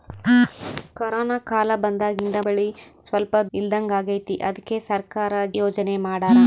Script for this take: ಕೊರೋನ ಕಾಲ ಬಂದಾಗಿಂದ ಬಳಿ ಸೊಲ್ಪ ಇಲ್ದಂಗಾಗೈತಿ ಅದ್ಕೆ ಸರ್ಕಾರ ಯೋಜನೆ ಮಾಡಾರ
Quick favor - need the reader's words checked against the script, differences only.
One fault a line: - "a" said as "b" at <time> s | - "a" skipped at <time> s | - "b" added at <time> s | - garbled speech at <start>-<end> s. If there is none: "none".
none